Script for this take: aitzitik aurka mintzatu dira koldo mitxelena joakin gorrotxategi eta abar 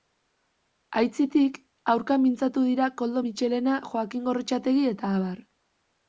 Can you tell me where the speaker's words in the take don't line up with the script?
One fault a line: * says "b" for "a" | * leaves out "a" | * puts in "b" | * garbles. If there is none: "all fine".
all fine